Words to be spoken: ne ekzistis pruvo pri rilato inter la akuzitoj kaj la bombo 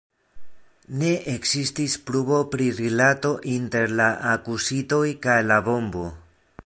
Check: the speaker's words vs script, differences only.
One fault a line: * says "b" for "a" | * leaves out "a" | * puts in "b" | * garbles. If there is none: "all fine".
all fine